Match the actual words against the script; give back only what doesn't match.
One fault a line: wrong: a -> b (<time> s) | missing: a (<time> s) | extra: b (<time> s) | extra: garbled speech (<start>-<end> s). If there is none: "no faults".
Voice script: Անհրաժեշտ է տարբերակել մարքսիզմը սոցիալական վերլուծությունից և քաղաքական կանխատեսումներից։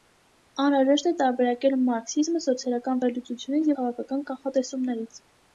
missing: և (3.7 s)